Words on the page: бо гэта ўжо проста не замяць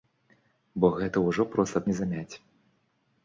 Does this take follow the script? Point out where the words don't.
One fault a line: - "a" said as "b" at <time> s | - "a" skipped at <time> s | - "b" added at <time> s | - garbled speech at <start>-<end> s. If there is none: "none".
none